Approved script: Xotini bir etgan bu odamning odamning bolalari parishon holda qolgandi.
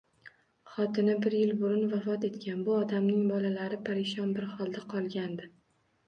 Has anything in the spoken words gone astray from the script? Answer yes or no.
yes